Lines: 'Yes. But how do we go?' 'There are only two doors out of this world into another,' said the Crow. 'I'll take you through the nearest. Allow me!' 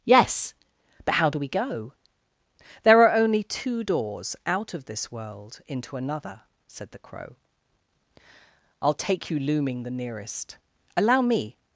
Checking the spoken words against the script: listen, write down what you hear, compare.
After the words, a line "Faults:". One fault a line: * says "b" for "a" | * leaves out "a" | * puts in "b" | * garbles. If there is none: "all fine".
'Yes. But how do we go?' 'There are only two doors out of this world into another,' said the Crow. 'I'll take you looming the nearest. Allow me!'
Faults:
* says "looming" for "through"